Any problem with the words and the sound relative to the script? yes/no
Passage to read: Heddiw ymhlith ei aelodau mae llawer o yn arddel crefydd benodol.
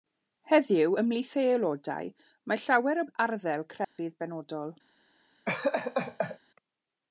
yes